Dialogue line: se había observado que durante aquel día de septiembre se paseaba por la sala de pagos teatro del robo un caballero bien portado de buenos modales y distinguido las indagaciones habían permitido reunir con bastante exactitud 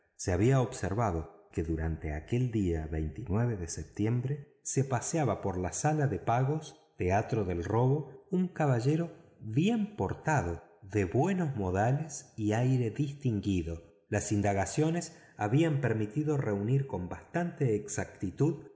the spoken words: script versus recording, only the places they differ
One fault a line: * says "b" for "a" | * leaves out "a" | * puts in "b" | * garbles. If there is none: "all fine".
* puts in "aire"